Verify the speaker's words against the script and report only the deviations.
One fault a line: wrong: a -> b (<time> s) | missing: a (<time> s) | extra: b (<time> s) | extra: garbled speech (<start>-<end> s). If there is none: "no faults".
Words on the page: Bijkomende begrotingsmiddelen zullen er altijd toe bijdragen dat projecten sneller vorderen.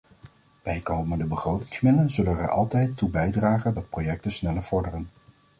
no faults